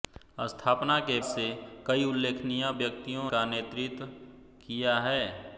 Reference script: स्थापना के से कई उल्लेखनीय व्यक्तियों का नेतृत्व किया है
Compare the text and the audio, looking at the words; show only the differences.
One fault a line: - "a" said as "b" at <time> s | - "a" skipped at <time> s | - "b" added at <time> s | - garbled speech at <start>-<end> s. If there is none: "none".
none